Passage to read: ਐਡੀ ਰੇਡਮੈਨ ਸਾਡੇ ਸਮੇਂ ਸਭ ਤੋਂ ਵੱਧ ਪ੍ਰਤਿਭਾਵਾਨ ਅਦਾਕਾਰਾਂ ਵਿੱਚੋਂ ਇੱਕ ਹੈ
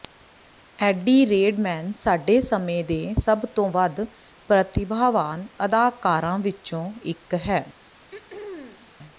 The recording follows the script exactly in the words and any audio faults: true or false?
false